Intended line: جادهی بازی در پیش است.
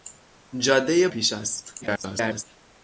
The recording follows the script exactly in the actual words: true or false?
false